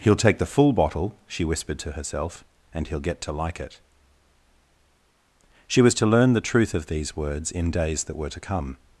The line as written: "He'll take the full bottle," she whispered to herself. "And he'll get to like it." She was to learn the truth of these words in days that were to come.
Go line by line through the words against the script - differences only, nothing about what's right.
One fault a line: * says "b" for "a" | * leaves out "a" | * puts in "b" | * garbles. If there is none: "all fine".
all fine